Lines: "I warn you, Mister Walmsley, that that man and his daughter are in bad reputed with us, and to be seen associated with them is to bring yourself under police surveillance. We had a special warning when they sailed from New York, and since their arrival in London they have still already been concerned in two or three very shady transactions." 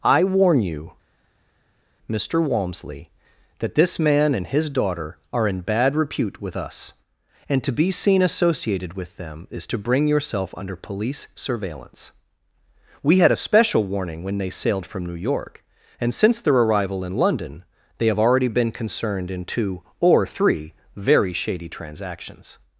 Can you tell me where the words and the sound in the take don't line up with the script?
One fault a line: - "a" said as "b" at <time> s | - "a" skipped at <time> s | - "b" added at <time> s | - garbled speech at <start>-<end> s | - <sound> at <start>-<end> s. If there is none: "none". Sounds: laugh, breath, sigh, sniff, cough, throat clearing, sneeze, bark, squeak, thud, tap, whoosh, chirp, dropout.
- "that" said as "this" at 3.7 s
- "reputed" said as "repute" at 5.9 s
- "still" skipped at 18.2 s